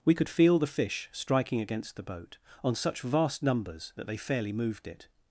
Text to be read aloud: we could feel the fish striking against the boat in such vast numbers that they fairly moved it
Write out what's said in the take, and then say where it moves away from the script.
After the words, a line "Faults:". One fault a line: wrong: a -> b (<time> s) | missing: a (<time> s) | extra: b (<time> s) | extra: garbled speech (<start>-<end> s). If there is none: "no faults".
we could feel the fish striking against the boat on such vast numbers that they fairly moved it
Faults:
wrong: in -> on (2.6 s)